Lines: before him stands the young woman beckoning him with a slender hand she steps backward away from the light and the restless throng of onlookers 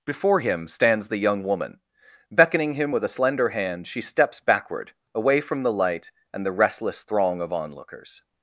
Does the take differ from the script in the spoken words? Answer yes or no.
no